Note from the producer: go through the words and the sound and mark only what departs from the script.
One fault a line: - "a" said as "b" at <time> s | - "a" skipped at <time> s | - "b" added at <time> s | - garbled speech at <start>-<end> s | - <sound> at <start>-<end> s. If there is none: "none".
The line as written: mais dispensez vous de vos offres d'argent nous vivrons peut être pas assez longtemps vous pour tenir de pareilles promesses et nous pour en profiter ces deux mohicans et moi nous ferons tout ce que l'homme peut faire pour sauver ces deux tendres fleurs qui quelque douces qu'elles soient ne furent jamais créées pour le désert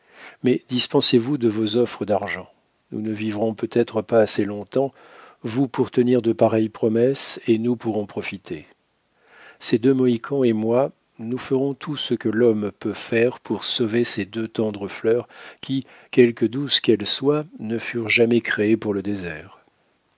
- "ne" added at 3.0 s